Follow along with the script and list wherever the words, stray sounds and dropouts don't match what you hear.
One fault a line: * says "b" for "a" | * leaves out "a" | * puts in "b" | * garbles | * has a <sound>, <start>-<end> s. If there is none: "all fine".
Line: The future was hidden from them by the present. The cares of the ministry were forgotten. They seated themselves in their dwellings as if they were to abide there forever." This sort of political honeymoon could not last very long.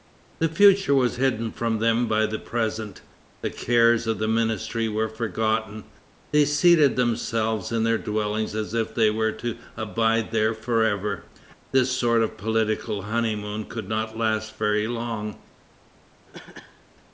* has a cough, 16.3-16.9 s